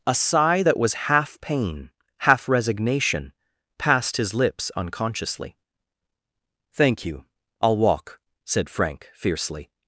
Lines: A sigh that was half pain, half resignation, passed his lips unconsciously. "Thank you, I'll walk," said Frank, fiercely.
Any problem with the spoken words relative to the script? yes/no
no